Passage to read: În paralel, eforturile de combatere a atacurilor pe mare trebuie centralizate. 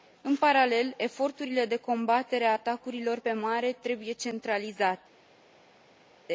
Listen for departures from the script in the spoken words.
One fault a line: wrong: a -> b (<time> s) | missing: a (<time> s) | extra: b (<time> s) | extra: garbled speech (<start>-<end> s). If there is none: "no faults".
no faults